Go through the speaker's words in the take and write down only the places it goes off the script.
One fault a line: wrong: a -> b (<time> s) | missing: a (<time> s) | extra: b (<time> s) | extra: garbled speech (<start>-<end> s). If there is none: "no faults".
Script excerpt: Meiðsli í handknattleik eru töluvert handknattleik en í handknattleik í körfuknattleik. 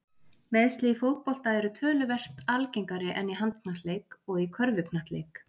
wrong: handknattleik -> fótbolta (1.0 s)
wrong: handknattleik -> algengari (2.5 s)
extra: og (4.2 s)